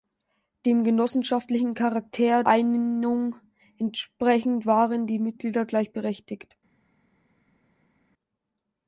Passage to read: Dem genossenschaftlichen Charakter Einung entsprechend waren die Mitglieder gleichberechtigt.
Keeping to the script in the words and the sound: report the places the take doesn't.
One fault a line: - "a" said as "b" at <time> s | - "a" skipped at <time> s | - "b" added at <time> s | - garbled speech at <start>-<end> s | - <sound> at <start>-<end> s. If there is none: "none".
none